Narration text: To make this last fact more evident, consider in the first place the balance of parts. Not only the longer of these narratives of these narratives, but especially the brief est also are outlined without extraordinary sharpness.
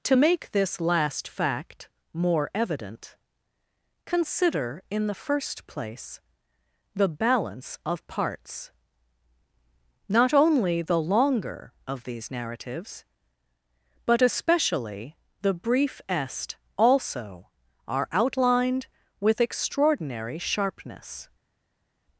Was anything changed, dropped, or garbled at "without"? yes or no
yes